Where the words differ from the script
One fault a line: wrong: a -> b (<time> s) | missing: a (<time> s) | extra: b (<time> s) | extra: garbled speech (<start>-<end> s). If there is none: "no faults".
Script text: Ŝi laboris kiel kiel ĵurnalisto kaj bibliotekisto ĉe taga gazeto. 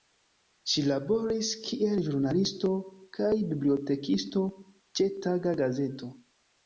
missing: kiel (2.0 s)